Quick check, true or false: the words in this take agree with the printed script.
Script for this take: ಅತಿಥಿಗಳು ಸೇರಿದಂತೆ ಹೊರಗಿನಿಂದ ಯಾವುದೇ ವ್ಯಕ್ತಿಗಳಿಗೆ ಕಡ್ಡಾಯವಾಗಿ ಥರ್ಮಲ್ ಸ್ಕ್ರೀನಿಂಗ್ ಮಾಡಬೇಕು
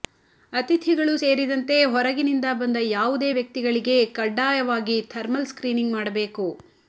false